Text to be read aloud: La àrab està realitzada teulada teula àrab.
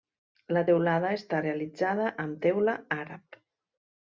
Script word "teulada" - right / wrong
wrong